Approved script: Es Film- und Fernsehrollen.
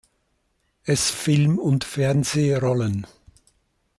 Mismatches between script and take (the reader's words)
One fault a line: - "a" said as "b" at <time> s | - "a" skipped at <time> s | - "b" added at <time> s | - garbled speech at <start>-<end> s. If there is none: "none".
none